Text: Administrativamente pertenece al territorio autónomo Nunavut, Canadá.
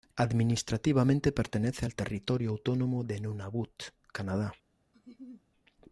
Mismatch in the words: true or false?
true